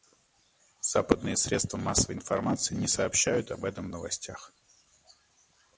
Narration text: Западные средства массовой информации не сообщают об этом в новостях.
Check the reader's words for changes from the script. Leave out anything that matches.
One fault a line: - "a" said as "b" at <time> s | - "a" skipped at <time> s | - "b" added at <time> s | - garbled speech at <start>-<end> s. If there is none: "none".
none